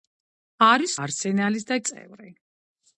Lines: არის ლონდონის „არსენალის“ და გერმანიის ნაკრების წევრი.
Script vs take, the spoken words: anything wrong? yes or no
yes